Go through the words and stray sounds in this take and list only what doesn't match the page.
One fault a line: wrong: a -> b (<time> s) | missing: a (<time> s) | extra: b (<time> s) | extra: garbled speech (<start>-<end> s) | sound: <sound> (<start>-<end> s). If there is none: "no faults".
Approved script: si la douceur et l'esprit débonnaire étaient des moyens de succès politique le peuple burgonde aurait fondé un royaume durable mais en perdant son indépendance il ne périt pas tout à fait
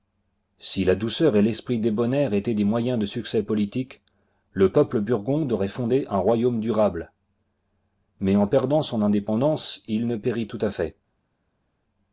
missing: pas (10.5 s)